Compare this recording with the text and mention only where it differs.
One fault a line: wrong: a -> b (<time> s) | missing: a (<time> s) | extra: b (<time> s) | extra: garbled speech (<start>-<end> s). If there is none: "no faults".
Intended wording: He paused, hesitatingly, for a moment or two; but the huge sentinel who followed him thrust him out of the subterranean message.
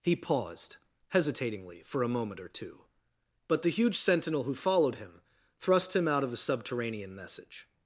no faults